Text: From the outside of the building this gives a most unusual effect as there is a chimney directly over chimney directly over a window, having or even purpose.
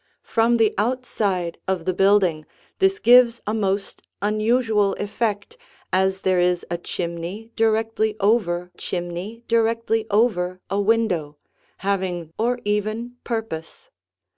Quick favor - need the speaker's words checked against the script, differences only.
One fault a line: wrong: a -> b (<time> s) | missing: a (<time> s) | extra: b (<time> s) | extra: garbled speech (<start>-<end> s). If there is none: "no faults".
no faults